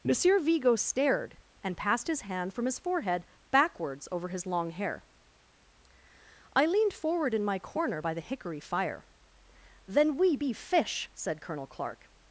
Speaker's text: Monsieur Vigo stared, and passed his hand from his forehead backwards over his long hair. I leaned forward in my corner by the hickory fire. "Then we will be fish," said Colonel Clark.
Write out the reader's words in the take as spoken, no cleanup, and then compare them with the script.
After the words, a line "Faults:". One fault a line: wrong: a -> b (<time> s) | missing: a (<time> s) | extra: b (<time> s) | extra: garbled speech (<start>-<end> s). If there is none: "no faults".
Monsieur Vigo stared, and passed his hand from his forehead backwards over his long hair. I leaned forward in my corner by the hickory fire. "Then we be fish," said Colonel Clark.
Faults:
missing: will (10.4 s)